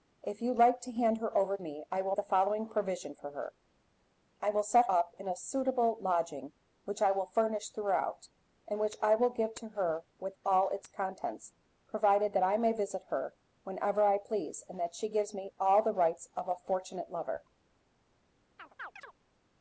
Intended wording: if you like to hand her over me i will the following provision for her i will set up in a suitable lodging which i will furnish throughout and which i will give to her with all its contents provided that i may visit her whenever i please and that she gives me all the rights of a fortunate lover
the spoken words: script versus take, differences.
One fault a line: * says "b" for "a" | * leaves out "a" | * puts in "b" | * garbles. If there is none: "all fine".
all fine